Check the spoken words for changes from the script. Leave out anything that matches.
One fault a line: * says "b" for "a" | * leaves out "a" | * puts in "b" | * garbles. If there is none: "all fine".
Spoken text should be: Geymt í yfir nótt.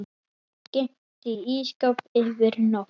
* puts in "ísskáp"